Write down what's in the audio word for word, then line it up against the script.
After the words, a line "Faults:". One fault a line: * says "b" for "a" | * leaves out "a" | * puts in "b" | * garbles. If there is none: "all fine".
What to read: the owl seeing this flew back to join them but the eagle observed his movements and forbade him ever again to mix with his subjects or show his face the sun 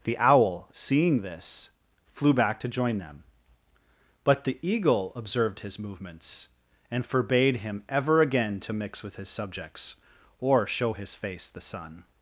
the owl seeing this flew back to join them but the eagle observed his movements and forbade him ever again to mix with his subjects or show his face the sun
Faults:
all fine